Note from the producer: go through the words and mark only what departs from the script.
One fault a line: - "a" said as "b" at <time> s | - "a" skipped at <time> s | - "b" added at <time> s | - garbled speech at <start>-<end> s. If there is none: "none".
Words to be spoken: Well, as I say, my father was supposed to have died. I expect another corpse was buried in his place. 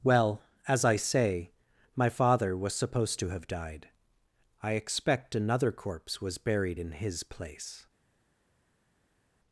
none